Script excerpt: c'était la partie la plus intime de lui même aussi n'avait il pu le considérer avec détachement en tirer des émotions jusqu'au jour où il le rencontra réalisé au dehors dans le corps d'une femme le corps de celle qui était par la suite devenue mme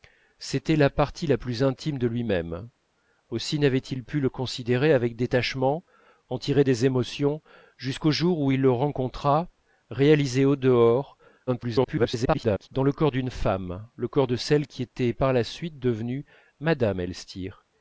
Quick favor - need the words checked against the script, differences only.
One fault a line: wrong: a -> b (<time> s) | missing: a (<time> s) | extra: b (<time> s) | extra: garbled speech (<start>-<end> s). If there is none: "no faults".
extra: garbled speech (11.5-12.7 s)